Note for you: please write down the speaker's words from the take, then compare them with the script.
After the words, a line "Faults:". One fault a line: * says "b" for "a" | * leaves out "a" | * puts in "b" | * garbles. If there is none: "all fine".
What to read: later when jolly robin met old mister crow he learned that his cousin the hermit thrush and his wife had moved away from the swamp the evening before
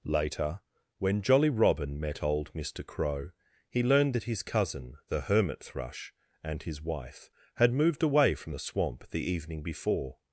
later when jolly robin met old mister crow he learned that his cousin the hermit thrush and his wife had moved away from the swamp the evening before
Faults:
all fine